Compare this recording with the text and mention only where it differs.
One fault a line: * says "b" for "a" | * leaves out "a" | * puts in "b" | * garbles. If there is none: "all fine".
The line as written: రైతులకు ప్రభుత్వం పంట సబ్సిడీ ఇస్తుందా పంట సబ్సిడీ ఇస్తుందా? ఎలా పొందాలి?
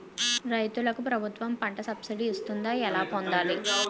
* leaves out "పంట సబ్సిడీ ఇస్తుందా"